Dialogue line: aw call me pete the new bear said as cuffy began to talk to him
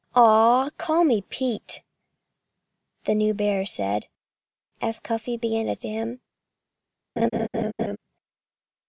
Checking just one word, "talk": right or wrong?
wrong